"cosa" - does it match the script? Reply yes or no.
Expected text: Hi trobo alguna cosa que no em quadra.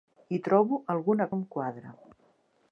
no